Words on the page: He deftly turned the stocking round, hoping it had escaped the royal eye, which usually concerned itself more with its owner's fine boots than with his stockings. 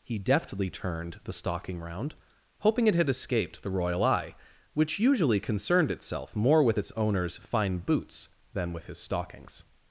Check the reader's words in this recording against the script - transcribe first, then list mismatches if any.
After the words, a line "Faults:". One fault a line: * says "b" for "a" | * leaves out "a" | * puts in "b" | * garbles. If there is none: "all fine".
He deftly turned the stocking round, hoping it had escaped the royal eye, which usually concerned itself more with its owner's fine boots than with his stockings.
Faults:
all fine